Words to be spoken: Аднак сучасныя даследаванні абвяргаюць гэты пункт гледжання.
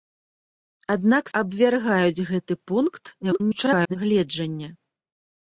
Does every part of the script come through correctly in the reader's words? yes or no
no